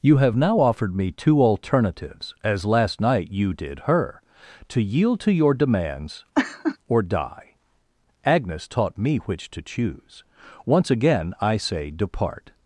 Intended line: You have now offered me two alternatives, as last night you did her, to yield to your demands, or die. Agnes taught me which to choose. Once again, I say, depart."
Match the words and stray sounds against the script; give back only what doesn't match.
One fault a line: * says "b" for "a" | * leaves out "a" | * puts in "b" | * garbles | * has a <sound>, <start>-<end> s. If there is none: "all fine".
* has a laugh, 6.3-6.8 s